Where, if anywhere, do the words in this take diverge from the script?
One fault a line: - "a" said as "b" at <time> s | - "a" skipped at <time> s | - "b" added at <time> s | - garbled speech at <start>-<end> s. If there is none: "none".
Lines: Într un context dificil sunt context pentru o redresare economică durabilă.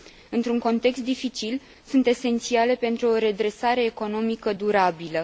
- "context" said as "esențiale" at 2.1 s